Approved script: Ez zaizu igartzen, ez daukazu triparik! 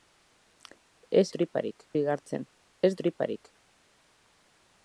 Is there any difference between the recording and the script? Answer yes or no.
yes